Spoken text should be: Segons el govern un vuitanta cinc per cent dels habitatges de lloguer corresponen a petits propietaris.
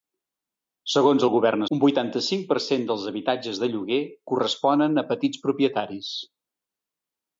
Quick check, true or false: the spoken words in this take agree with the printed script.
true